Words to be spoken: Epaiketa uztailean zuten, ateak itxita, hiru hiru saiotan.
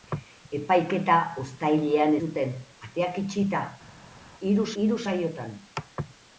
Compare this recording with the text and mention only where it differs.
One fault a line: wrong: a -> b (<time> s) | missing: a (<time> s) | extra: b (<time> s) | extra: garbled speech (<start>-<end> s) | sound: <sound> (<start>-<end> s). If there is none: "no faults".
no faults